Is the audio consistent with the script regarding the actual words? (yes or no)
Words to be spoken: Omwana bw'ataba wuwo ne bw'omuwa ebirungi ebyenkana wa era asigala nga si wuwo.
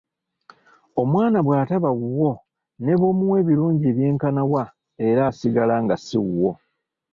yes